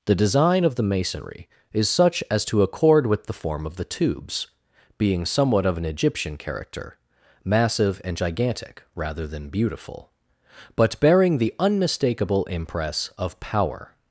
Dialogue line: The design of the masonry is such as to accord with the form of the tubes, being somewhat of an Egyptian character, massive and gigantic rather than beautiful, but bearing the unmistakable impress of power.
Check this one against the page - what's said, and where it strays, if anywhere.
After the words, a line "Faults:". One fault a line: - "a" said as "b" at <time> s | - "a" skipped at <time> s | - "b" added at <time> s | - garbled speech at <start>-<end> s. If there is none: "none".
The design of the masonry is such as to accord with the form of the tubes, being somewhat of an Egyptian character, massive and gigantic rather than beautiful, but bearing the unmistakable impress of power.
Faults:
none